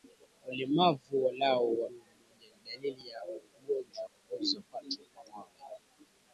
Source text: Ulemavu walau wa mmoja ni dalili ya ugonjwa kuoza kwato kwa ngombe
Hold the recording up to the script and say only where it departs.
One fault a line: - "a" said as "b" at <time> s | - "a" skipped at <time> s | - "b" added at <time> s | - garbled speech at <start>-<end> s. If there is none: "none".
none